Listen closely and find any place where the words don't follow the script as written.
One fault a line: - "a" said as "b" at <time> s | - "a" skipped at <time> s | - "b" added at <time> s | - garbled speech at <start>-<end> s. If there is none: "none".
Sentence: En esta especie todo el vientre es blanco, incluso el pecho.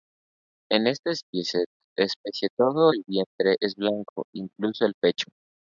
none